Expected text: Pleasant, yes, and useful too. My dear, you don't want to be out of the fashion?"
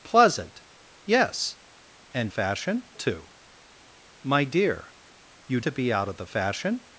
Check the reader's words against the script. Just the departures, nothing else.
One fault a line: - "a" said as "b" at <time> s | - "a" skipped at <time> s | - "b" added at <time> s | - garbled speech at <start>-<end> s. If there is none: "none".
- "useful" said as "fashion" at 2.3 s
- "don't want" skipped at 5.6 s